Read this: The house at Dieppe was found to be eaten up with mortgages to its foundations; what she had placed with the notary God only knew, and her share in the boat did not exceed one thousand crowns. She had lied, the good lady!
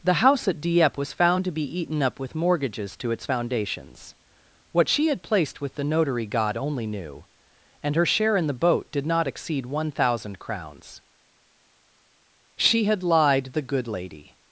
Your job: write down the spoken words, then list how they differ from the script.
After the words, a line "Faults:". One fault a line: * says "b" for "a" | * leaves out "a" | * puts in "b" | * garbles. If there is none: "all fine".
The house at Dieppe was found to be eaten up with mortgages to its foundations; what she had placed with the notary God only knew, and her share in the boat did not exceed one thousand crowns. She had lied, the good lady!
Faults:
all fine